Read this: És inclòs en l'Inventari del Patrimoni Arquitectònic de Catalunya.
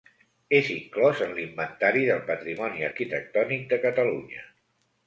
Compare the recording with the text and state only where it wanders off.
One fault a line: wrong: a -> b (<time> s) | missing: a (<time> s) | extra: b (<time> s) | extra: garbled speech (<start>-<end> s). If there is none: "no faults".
no faults